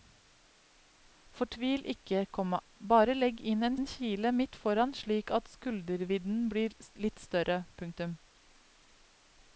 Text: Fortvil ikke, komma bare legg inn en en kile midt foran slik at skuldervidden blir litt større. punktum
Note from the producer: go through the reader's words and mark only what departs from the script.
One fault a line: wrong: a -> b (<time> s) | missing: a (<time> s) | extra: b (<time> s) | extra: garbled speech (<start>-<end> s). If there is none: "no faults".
no faults